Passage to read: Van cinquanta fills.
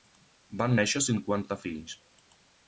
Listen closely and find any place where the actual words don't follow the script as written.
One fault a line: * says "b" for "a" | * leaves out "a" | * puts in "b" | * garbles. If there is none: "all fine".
* puts in "néixer"